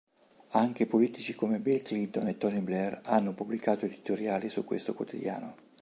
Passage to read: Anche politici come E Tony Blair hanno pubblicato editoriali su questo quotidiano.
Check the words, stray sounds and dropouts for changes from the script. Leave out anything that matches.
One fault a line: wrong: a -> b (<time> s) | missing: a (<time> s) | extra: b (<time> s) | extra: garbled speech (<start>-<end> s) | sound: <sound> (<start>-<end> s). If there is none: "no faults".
extra: Bill Clinton (1.6 s)